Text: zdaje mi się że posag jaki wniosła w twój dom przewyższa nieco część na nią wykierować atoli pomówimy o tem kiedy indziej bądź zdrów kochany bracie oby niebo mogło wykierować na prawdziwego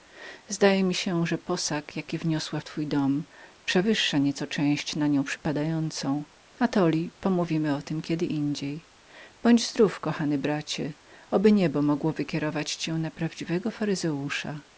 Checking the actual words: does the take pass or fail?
fail